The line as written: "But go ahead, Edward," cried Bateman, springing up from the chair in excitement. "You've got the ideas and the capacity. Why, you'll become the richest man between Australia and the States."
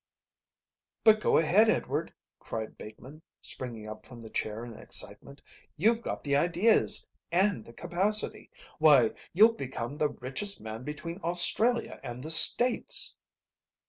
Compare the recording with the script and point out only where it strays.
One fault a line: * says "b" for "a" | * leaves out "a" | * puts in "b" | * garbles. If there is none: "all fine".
all fine